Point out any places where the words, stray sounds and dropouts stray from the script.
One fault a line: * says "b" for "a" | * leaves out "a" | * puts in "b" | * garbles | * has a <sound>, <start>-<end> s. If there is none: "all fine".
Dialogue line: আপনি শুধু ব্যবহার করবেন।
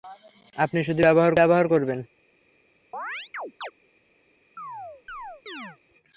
* puts in "ব্যবহার"
* has a chirp, 2.9-3.7 s
* has a chirp, 4.6-5.8 s